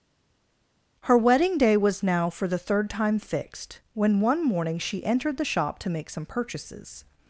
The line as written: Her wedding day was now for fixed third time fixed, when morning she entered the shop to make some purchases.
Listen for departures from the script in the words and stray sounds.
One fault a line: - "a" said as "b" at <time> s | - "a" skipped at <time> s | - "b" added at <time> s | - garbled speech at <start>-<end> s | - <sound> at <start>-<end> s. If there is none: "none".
- "fixed" said as "the" at 2.5 s
- "one" added at 4.2 s